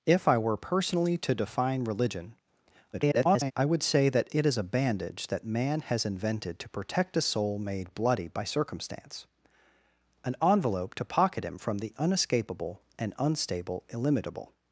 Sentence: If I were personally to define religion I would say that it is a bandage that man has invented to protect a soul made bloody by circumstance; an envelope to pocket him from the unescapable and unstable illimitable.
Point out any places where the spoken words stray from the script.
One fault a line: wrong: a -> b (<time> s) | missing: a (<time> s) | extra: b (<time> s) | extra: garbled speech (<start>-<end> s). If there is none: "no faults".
extra: garbled speech (2.9-3.5 s)